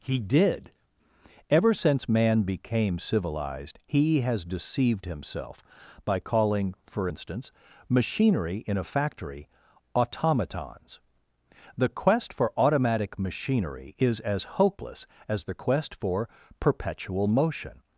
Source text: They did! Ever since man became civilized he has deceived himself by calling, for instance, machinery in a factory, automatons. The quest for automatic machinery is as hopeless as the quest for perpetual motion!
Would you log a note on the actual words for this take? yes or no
yes